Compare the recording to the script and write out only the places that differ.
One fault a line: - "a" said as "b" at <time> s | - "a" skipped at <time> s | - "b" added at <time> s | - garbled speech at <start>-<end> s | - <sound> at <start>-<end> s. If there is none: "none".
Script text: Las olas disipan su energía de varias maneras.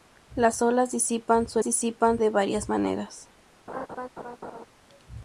- "energía" said as "disipan" at 1.6 s
- laugh at 3.7-4.7 s